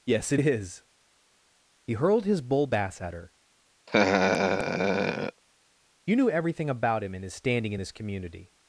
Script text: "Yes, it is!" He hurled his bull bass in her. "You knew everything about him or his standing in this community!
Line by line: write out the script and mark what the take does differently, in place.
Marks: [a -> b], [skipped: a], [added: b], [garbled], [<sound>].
"Yes, it is!" He hurled his bull bass [in -> at] her. [laugh] "You knew everything about him [or -> and] his standing in this community!